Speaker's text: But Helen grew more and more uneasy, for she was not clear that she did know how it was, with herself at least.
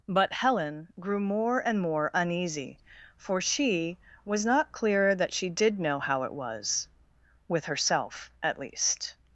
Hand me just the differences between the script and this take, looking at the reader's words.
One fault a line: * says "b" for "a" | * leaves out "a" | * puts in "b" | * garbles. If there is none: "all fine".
all fine